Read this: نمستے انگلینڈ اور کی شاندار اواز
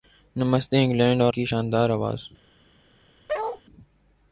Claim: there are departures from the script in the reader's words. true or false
false